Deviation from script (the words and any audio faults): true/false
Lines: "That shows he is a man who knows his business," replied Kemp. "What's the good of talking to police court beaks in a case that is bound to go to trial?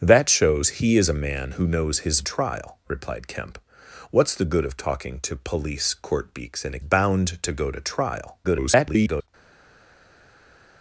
true